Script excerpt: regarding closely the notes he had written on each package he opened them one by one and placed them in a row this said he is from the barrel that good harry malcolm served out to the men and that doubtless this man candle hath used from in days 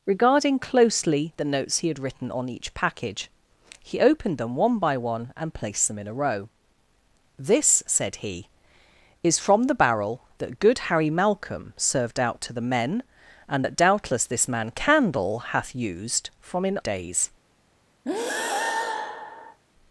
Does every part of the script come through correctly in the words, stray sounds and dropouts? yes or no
no